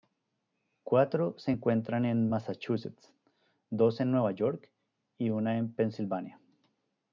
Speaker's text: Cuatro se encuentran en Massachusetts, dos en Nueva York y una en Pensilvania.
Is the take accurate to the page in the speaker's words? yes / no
yes